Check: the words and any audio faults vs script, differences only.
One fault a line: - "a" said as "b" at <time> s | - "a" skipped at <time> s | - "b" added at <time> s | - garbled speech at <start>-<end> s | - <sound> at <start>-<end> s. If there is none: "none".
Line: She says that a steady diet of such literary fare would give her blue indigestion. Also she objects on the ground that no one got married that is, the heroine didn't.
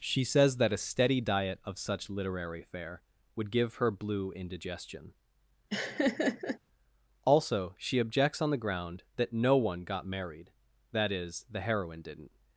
- laugh at 5.7-6.6 s